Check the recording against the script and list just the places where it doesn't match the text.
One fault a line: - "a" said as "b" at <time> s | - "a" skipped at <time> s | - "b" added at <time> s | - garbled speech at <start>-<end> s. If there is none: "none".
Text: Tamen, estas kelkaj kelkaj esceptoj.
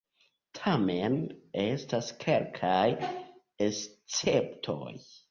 - "kelkaj" skipped at 2.8 s